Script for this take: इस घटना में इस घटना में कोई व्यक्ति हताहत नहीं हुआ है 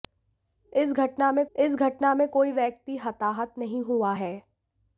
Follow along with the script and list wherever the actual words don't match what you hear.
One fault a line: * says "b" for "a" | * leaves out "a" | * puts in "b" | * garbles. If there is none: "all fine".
all fine